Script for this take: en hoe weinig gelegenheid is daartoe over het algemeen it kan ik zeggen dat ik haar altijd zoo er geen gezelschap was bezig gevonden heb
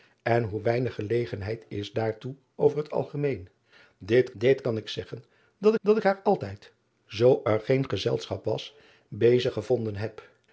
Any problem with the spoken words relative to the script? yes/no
yes